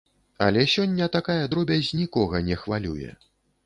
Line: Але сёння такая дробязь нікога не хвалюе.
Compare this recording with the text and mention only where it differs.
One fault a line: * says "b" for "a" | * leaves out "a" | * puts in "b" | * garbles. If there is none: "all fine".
all fine